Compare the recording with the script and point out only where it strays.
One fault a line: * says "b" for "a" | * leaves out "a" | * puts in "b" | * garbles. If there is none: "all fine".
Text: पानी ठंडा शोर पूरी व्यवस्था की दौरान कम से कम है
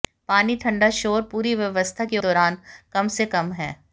all fine